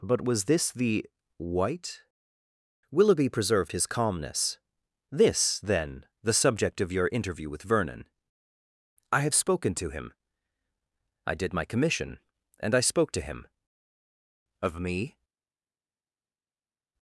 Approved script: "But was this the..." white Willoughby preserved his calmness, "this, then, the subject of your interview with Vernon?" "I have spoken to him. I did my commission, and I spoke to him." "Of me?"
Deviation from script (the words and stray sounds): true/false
false